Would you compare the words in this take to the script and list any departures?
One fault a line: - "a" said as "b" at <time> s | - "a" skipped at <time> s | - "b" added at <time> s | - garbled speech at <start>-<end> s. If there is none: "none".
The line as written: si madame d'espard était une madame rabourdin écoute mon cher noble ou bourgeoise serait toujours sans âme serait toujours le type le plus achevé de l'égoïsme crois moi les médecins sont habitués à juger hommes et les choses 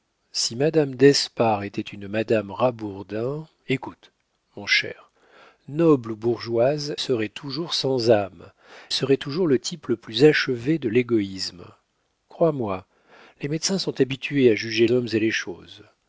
none